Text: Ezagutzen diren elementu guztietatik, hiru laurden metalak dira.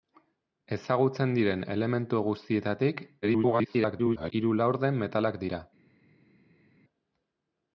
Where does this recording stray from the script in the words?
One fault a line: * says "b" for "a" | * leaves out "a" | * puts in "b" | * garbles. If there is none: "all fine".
* garbles